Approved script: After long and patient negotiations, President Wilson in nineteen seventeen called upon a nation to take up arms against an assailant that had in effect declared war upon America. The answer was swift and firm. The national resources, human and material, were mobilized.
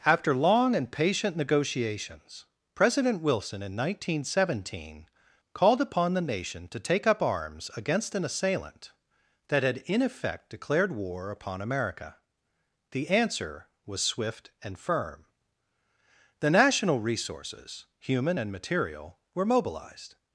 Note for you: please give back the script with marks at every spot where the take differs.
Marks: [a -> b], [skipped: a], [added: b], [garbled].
After long and patient negotiations, President Wilson in nineteen seventeen called upon [a -> the] nation to take up arms against an assailant that had in effect declared war upon America. The answer was swift and firm. The national resources, human and material, were mobilized.